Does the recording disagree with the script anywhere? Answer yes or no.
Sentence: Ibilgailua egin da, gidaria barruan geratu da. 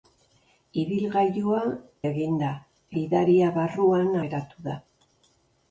no